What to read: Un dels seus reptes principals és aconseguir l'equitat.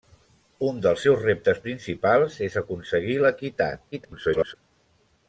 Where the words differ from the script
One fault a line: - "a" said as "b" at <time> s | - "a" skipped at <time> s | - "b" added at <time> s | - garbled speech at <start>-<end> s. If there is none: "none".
- garbled speech at 3.9-4.6 s